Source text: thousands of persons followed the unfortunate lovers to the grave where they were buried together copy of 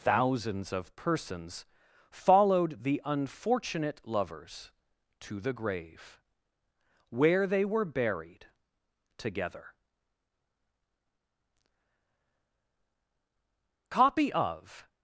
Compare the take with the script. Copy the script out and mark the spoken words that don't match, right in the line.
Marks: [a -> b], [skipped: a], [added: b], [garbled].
thousands of persons followed the unfortunate lovers to the grave where they were buried together copy of